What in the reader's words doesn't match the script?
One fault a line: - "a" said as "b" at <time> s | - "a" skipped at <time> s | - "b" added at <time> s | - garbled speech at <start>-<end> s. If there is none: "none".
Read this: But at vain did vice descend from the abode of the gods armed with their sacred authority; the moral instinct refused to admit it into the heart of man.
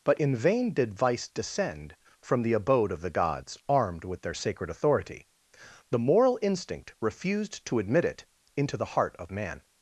- "at" said as "in" at 0.1 s